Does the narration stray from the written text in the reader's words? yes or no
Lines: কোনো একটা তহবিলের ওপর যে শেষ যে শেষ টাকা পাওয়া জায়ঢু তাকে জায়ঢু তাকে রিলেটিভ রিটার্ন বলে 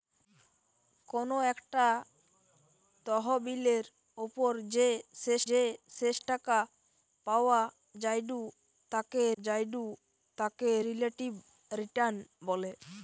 no